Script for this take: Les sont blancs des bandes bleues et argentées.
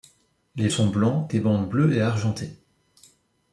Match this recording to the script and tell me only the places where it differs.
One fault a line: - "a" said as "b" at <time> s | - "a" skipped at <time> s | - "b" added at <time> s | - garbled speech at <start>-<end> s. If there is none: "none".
none